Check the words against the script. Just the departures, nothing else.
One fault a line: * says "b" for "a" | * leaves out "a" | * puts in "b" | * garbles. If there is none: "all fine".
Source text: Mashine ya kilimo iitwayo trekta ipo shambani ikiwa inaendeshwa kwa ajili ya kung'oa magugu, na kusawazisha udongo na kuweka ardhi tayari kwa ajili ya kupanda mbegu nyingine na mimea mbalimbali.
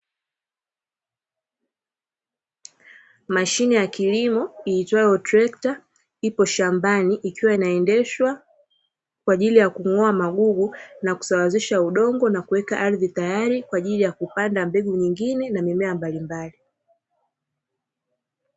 all fine